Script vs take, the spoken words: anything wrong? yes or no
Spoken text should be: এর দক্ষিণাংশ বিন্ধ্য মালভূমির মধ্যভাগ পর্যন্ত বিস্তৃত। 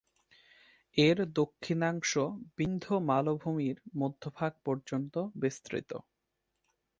no